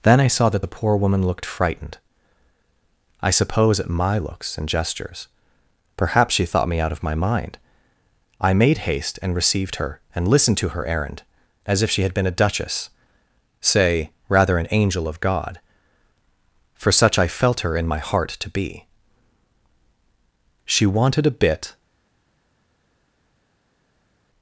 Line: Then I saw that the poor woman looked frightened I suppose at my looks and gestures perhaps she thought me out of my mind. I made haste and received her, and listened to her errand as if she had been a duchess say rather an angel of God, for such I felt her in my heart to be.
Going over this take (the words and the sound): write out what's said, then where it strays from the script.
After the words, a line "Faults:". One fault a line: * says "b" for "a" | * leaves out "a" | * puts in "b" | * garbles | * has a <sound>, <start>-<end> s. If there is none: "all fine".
Then I saw that the poor woman looked frightened I suppose at my looks and gestures perhaps she thought me out of my mind. I made haste and received her, and listened to her errand as if she had been a duchess say rather an angel of God, for such I felt her in my heart to be. She wanted a bit
Faults:
* puts in "She wanted a bit"